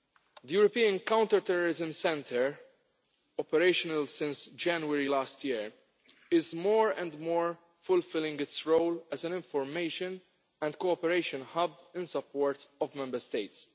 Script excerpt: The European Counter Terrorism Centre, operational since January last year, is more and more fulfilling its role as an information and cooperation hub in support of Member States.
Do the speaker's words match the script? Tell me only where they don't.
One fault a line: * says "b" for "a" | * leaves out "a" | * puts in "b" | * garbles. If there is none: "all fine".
all fine